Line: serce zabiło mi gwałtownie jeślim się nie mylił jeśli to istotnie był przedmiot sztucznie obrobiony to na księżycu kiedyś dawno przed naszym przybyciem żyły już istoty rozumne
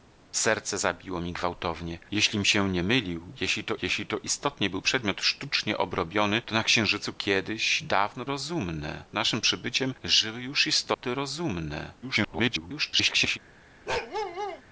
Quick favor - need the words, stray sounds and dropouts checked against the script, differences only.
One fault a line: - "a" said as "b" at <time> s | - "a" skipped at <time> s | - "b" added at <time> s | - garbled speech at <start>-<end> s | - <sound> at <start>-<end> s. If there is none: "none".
- "jeśli to" added at 3.8 s
- "przed" said as "rozumne" at 8.3 s
- dropout at 10.9-11.0 s
- garbled speech at 12.0-13.4 s
- bark at 13.9-14.6 s